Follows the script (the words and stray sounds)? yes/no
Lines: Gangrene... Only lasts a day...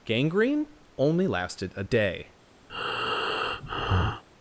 no